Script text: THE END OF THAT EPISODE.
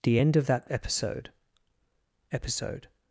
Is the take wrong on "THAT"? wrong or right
right